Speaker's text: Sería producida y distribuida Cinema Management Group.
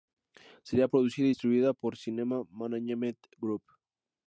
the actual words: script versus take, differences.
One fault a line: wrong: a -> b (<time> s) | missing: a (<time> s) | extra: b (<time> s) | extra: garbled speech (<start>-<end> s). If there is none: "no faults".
extra: por (1.7 s)